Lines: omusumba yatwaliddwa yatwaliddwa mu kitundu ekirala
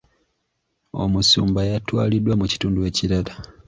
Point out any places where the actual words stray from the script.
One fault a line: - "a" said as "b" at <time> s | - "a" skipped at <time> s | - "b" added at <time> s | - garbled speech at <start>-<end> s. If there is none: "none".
- "yatwaliddwa" skipped at 2.3 s